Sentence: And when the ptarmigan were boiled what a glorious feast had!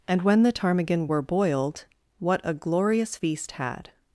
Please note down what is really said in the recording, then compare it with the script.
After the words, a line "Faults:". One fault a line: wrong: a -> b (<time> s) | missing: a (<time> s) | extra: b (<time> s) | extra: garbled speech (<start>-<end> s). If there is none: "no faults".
And when the ptarmigan were boiled what a glorious feast had!
Faults:
no faults